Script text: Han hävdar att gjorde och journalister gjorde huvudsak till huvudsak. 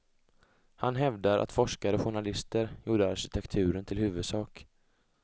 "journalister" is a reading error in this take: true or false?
false